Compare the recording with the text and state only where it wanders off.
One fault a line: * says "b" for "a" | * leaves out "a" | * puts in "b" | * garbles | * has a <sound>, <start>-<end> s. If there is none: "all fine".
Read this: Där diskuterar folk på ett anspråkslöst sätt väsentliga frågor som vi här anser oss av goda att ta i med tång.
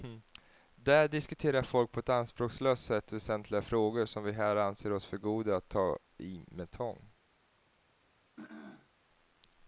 * says "för" for "av"
* has a throat clearing, 8.4-8.9 s